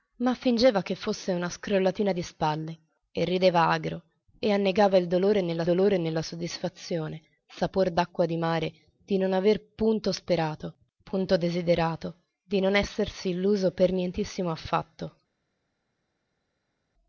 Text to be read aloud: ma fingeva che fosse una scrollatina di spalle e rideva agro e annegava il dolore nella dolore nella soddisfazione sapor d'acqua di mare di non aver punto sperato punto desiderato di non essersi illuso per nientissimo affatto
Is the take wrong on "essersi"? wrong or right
right